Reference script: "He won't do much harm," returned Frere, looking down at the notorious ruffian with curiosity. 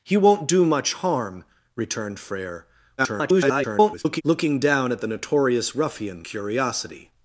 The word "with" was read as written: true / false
false